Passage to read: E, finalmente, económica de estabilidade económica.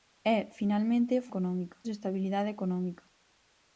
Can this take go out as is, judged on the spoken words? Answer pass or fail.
pass